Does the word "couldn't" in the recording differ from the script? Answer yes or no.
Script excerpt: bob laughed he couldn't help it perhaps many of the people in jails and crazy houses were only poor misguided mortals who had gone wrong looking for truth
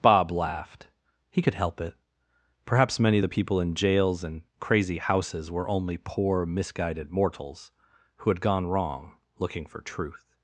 yes